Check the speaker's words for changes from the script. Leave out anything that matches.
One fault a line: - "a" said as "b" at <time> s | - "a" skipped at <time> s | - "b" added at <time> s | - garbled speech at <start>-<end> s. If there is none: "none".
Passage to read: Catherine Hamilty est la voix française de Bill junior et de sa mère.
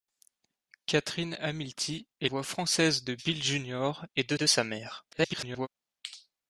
- "la" skipped at 2.3 s
- "de" added at 4.3 s
- garbled speech at 5.1-5.7 s